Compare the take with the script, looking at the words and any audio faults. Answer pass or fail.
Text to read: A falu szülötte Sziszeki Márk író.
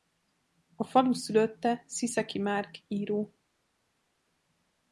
pass